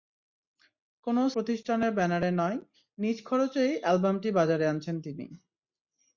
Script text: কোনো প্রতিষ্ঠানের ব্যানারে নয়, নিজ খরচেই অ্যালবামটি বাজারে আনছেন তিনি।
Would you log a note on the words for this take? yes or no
no